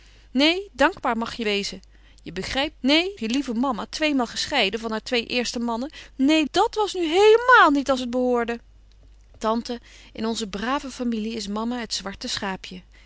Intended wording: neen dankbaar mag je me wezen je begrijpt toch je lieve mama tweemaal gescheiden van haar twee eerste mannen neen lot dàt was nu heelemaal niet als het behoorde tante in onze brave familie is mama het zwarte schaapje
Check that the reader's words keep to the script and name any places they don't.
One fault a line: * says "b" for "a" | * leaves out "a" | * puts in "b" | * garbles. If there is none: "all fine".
* leaves out "me"
* says "neen" for "toch"
* leaves out "lot"